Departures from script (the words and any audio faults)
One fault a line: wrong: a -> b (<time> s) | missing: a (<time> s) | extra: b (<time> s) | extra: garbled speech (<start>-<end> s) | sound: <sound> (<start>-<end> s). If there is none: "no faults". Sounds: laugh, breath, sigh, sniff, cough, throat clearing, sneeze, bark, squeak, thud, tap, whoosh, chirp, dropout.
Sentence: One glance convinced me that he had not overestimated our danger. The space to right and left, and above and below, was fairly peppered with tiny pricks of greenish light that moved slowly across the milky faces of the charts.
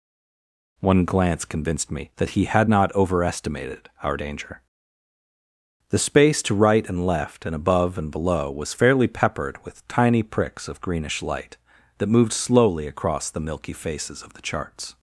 no faults